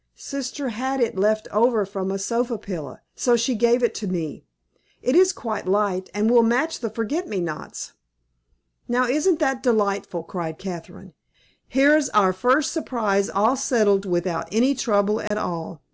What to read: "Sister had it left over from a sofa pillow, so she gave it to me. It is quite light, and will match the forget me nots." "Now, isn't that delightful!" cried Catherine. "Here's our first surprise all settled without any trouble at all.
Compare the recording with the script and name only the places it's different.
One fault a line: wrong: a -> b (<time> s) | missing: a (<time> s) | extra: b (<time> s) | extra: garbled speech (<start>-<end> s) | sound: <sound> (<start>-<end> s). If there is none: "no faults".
sound: dropout (15.3-15.3 s)